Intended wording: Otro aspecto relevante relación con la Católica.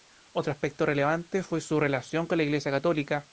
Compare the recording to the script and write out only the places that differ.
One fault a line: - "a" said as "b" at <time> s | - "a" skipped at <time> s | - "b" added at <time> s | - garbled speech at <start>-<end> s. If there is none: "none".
- "fue su" added at 1.4 s
- "Iglesia" added at 2.4 s